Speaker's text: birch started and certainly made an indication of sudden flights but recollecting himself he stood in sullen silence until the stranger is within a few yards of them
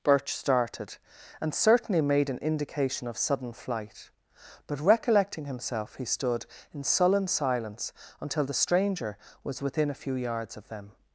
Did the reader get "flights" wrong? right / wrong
wrong